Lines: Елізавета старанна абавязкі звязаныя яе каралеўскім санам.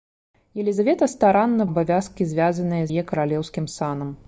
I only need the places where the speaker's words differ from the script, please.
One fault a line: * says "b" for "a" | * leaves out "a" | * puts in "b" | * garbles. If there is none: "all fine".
all fine